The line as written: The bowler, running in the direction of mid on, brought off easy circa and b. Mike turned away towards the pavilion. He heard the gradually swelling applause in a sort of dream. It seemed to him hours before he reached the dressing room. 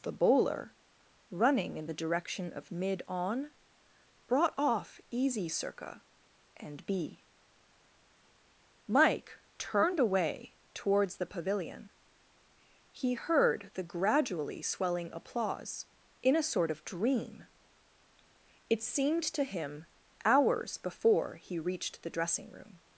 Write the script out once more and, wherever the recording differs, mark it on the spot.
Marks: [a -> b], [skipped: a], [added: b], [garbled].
The bowler, running in the direction of mid on, brought off easy circa and b. Mike turned away towards the pavilion. He heard the gradually swelling applause in a sort of dream. It seemed to him hours before he reached the dressing room.